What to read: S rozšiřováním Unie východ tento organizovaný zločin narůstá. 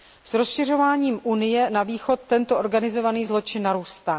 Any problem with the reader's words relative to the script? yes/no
yes